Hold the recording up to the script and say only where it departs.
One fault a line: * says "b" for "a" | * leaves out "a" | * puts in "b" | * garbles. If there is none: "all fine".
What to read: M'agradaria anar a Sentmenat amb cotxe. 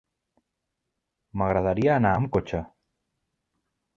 * leaves out "a Sentmenat"